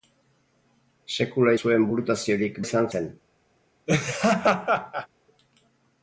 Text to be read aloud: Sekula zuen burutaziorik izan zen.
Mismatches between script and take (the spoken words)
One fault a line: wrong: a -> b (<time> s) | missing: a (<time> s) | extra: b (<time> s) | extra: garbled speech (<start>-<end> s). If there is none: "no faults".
no faults